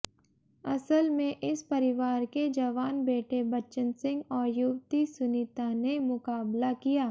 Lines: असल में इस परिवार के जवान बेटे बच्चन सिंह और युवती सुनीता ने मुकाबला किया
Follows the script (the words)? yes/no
yes